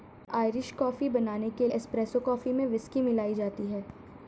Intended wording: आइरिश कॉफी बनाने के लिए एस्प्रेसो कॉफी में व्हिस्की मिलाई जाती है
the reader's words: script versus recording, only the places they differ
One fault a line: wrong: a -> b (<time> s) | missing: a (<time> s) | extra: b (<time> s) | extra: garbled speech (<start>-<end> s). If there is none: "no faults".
missing: लिए (1.7 s)